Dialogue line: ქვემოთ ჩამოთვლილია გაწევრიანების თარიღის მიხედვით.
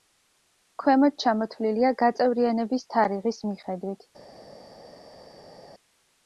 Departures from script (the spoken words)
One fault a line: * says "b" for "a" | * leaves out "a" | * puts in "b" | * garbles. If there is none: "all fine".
all fine